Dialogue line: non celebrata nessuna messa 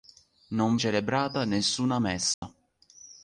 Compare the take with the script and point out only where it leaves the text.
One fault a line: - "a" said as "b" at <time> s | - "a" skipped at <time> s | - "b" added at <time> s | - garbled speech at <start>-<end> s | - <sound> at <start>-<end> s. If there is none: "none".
- dropout at 2.3-2.4 s